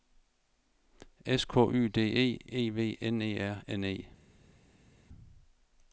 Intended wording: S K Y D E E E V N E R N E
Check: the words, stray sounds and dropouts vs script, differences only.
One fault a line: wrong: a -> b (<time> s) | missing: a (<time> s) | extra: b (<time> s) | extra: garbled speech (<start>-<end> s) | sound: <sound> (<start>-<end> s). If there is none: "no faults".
missing: E (2.7 s)